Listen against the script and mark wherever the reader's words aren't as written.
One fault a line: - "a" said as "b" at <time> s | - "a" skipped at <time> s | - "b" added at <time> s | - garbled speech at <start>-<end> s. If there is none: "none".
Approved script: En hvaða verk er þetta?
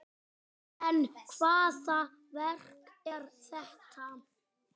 none